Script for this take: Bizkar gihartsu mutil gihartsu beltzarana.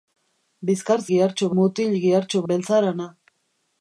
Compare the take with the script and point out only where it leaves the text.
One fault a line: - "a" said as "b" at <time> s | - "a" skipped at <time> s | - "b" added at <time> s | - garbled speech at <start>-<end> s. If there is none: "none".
none